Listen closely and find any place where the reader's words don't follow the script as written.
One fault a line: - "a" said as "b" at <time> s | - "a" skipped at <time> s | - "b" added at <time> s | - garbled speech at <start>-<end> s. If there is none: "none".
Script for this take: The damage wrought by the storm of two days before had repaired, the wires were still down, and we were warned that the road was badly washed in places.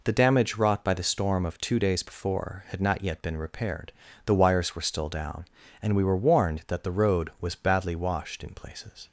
- "not yet been" added at 2.8 s